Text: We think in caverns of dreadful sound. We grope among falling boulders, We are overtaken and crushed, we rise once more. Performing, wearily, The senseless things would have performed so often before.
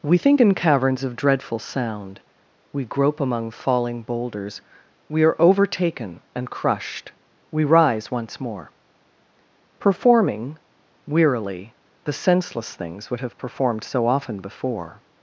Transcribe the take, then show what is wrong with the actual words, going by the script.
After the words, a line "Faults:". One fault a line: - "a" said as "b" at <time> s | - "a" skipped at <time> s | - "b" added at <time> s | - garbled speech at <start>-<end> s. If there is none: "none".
We think in caverns of dreadful sound. We grope among falling boulders, We are overtaken and crushed, we rise once more. Performing, wearily, The senseless things would have performed so often before.
Faults:
none